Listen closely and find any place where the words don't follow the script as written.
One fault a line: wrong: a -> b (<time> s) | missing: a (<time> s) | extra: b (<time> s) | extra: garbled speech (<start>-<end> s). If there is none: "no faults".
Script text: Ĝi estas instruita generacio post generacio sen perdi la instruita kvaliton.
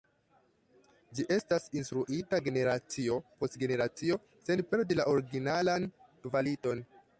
wrong: instruita -> originalan (5.2 s)